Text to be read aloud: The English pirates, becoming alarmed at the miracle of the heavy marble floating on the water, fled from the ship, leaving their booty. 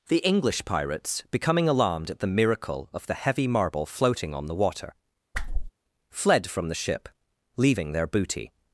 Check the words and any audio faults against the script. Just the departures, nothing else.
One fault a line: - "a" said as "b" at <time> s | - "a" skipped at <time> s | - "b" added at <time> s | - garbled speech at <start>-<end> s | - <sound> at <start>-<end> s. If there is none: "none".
- whoosh at 5.3-5.7 s